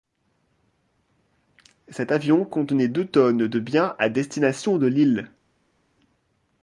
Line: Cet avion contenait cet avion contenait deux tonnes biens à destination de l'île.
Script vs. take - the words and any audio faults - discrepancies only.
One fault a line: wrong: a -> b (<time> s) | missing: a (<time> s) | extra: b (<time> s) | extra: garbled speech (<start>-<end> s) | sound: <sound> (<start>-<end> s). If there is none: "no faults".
missing: cet avion contenait (2.9 s)
extra: de (3.5 s)